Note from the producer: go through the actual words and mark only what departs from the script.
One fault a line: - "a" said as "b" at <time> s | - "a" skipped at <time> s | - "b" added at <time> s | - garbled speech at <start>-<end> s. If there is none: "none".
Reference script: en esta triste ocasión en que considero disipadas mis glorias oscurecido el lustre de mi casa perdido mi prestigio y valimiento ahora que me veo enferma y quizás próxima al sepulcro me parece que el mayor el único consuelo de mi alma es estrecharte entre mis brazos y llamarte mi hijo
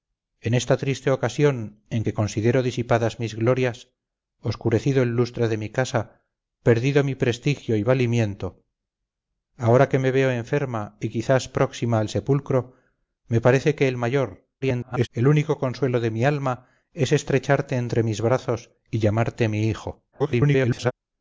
- garbled speech at 14.6-15.1 s
- garbled speech at 20.1-20.9 s